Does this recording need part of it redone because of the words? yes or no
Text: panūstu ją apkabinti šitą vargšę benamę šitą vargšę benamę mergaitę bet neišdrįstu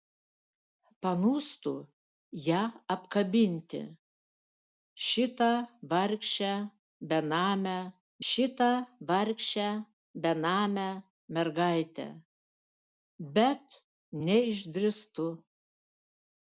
no